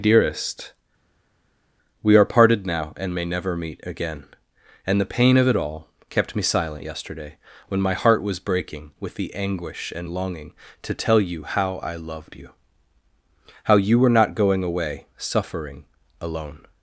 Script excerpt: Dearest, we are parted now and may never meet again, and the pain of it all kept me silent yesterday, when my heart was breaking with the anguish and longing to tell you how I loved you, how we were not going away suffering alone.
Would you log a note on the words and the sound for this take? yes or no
yes